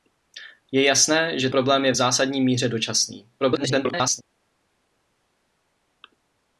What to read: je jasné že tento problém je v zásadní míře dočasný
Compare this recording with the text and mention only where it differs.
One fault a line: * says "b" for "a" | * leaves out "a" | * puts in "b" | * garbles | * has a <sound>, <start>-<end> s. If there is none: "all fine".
* leaves out "tento"
* garbles